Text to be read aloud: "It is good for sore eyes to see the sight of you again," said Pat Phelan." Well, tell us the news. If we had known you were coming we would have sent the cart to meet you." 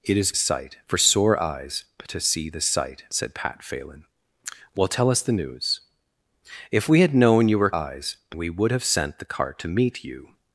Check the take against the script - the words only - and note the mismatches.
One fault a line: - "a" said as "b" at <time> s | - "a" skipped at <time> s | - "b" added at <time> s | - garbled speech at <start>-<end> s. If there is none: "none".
- "good" said as "sight" at 0.3 s
- "of you again" skipped at 3.0 s
- "coming" said as "eyes" at 7.7 s